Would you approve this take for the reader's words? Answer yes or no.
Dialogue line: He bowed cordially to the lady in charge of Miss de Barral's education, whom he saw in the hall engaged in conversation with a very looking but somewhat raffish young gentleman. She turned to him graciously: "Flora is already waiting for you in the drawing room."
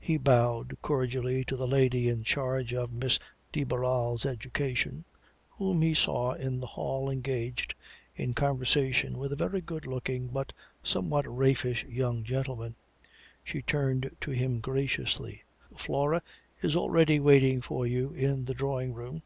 no